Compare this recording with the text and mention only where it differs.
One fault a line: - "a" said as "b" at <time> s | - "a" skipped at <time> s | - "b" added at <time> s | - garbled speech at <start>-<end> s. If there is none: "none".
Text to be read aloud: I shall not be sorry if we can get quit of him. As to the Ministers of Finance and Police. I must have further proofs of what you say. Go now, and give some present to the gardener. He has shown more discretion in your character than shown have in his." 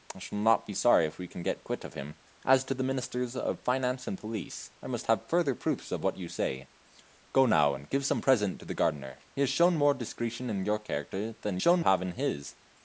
none